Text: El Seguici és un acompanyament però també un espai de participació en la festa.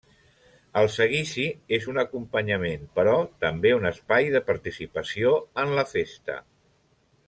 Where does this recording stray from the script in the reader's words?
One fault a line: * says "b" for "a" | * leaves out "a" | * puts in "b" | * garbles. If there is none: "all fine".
all fine